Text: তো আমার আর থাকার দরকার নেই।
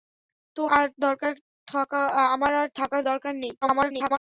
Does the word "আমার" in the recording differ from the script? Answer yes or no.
yes